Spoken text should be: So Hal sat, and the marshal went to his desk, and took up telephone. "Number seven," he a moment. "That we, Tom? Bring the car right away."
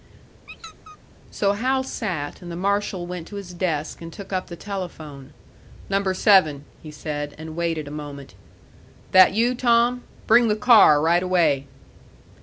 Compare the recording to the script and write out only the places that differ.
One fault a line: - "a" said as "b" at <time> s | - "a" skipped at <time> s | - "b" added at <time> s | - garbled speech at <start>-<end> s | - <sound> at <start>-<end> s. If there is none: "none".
- squeak at 0.5-1.0 s
- "the" added at 4.5 s
- "said and waited" added at 6.9 s
- "we" said as "you" at 9.3 s